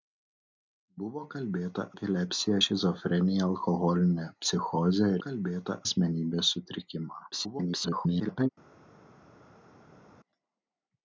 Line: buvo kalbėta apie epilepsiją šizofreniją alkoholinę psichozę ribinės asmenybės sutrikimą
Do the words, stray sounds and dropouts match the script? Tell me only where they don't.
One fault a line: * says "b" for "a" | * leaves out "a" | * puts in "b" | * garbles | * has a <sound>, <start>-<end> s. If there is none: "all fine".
* leaves out "apie"
* says "kalbėta" for "ribinės"
* garbles